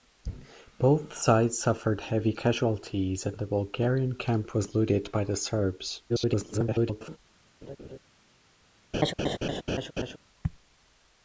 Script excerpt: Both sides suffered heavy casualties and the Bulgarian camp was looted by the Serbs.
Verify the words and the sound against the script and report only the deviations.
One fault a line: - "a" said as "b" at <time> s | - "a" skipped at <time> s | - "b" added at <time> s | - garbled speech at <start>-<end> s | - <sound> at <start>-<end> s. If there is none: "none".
- garbled speech at 6.1-7.2 s
- laugh at 7.6-8.0 s
- laugh at 8.9-10.2 s